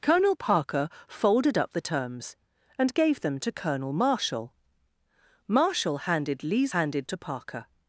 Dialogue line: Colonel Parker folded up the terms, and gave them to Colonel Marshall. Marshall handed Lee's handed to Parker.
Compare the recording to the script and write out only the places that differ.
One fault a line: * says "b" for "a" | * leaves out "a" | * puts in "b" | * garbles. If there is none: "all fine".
all fine